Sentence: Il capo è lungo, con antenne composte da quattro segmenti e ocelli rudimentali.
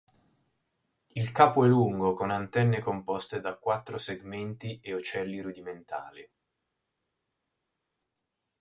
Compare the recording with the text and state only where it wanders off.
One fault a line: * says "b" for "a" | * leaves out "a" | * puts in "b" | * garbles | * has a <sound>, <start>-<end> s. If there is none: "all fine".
all fine